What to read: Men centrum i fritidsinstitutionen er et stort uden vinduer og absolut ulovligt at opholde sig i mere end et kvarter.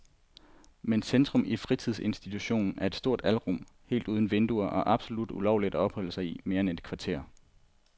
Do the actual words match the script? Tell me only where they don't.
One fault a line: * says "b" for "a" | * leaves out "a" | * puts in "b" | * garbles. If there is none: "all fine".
* puts in "alrum helt"